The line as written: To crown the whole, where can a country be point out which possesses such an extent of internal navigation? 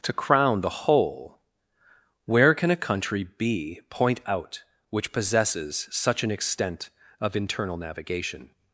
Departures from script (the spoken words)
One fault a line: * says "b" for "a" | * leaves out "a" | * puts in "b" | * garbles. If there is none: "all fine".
all fine